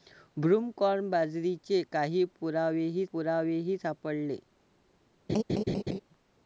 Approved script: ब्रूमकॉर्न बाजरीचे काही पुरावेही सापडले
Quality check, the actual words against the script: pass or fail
fail